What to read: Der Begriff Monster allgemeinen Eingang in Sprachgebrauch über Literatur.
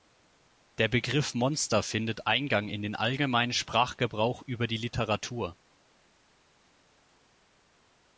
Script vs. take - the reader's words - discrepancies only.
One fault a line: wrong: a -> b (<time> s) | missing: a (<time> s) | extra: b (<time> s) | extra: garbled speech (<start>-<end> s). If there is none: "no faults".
wrong: allgemeinen -> findet (1.8 s)
extra: den allgemeinen (2.8 s)
extra: die (4.7 s)